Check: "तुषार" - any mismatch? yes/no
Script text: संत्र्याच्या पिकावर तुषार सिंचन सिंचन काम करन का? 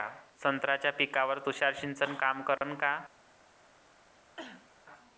no